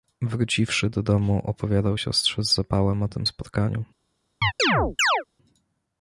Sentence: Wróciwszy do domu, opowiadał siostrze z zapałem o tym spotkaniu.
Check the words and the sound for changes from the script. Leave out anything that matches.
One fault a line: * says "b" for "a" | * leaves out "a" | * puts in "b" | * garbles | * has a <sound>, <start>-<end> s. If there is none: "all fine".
* has a chirp, 4.4-5.2 s